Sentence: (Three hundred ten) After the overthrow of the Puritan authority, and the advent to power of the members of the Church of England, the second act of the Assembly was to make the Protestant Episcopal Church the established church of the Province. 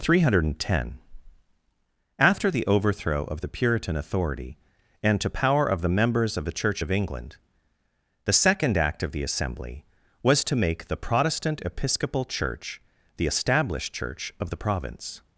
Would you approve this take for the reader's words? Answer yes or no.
no